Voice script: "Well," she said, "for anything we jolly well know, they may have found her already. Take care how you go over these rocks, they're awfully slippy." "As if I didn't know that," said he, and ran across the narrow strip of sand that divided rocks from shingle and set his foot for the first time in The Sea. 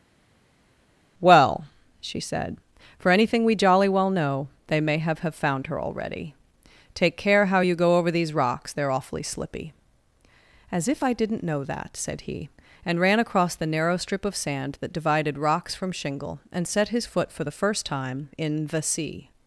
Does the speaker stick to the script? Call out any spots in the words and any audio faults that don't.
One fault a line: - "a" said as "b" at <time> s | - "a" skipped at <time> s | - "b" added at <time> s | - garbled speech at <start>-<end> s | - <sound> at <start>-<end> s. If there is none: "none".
- "have" added at 5.2 s